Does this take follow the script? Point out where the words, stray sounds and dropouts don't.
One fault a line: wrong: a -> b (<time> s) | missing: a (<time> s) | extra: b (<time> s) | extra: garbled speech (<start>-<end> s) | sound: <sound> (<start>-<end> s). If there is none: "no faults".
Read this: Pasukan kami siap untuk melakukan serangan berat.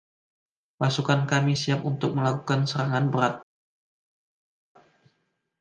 no faults